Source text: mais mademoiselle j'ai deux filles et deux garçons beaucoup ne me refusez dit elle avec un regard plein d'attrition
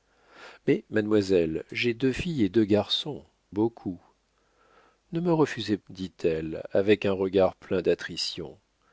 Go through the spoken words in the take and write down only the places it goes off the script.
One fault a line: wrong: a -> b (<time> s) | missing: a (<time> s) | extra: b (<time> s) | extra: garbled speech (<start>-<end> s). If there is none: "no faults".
no faults